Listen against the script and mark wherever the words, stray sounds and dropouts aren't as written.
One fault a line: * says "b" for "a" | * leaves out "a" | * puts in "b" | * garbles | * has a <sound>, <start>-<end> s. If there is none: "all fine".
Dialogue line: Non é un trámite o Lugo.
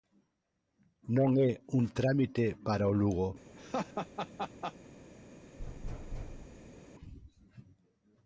* puts in "para"
* has a laugh, 3.5-4.7 s
* has a thud, 5.6-6.8 s